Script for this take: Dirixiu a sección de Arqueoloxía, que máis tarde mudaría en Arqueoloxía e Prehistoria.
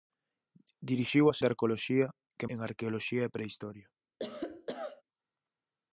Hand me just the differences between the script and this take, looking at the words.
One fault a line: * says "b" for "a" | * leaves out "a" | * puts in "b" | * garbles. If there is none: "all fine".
* leaves out "sección"
* leaves out "máis tarde mudaría"